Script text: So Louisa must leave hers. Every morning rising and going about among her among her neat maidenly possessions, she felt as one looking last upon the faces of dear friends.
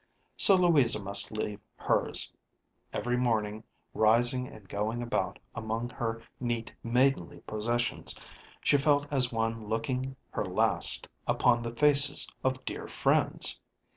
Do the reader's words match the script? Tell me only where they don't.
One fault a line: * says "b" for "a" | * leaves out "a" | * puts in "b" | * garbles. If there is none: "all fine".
* leaves out "among her"
* puts in "her"